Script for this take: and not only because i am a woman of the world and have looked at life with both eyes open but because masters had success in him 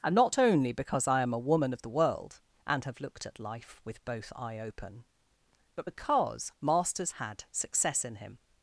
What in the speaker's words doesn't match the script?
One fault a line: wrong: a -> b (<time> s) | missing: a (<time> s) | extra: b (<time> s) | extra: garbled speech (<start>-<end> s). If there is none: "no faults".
wrong: eyes -> eye (4.3 s)